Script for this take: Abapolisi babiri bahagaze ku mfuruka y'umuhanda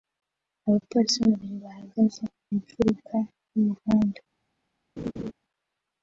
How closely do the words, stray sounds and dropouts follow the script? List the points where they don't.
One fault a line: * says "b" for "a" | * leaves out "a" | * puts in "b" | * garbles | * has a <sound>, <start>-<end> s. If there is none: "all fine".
* has a laugh, 5.0-5.3 s